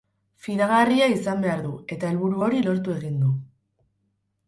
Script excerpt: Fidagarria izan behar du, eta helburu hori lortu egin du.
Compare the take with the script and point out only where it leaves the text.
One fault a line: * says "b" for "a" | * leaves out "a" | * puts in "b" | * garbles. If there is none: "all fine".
all fine